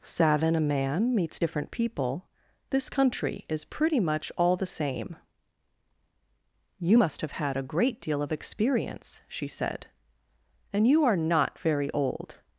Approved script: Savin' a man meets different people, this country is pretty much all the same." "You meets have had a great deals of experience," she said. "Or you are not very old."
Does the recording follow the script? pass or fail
fail